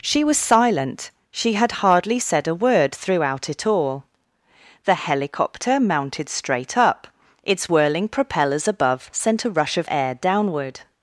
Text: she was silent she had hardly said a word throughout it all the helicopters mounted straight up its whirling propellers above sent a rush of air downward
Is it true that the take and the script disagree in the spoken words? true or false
true